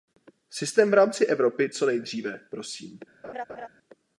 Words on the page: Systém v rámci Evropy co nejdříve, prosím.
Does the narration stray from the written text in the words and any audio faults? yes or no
yes